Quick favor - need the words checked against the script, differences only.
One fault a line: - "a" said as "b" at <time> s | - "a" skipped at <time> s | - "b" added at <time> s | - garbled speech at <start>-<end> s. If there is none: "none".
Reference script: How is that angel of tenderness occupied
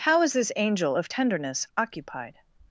- "that" said as "this" at 0.3 s